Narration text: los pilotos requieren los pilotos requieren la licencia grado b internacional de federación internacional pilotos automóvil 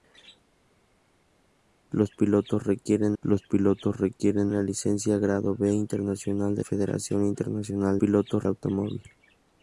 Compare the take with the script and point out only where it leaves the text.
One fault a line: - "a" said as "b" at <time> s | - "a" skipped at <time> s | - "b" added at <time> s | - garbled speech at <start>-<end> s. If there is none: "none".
none